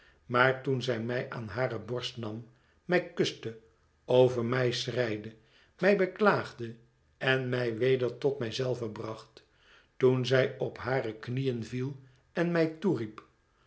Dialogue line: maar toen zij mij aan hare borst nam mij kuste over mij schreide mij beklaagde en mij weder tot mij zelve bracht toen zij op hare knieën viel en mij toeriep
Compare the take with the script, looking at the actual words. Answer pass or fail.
pass